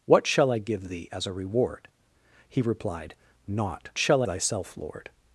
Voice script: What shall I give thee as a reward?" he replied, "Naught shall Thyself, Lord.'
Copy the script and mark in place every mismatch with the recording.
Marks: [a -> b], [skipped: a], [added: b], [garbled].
What shall I give thee as a reward?" he replied, "Naught shall Thyself, Lord.'